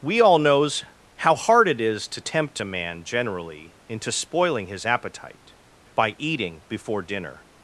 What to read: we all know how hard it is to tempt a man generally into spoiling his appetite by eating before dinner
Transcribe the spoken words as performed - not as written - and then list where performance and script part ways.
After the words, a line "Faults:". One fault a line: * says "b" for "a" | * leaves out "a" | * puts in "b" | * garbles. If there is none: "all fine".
we all knows how hard it is to tempt a man generally into spoiling his appetite by eating before dinner
Faults:
* says "knows" for "know"